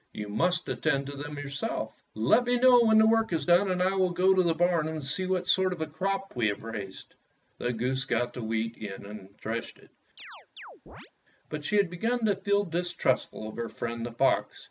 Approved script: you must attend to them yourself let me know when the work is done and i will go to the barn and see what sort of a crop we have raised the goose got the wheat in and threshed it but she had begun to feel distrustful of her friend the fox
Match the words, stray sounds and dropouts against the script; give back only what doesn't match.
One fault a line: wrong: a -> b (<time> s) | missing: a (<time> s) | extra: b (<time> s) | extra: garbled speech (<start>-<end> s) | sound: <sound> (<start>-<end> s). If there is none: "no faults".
sound: chirp (10.2-11.1 s)